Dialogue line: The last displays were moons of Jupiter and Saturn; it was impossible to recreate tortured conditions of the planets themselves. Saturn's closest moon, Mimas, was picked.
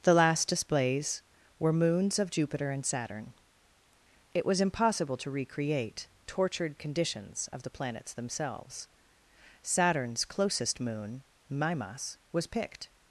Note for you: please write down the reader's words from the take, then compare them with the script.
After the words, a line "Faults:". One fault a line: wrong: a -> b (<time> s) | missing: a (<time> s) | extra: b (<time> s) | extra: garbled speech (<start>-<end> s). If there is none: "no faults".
The last displays were moons of Jupiter and Saturn; it was impossible to recreate tortured conditions of the planets themselves. Saturn's closest moon, Mimas, was picked.
Faults:
no faults